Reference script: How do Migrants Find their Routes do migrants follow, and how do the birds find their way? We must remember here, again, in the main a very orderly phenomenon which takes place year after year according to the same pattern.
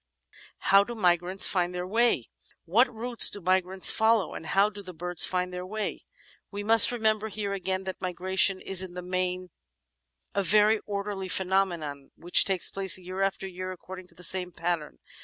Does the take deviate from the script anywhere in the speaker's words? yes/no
yes